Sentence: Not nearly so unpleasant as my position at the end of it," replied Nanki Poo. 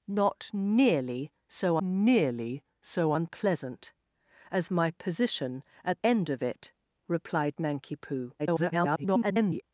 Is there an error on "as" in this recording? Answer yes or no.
no